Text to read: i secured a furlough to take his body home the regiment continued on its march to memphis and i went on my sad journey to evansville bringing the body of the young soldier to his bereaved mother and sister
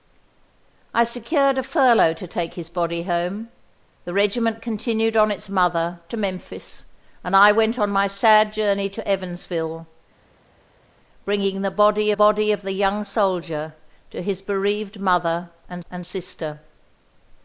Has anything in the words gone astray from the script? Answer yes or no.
yes